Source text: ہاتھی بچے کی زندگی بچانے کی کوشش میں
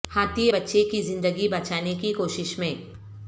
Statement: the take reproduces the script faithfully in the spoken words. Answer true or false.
true